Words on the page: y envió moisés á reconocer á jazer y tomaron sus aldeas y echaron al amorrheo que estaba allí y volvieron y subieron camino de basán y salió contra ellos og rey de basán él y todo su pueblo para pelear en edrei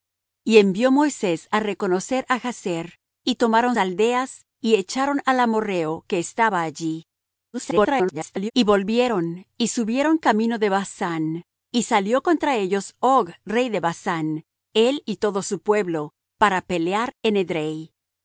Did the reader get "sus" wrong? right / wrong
wrong